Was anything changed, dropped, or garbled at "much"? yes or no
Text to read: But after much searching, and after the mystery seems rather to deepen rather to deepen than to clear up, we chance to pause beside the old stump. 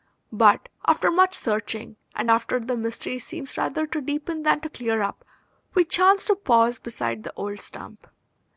no